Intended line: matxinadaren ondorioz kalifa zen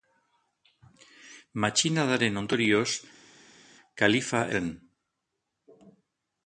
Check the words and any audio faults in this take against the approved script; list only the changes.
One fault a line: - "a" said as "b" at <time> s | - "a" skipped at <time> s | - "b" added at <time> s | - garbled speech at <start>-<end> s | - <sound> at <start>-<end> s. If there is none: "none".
none